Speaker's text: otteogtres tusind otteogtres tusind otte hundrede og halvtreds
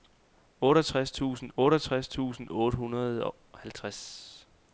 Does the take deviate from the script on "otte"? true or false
false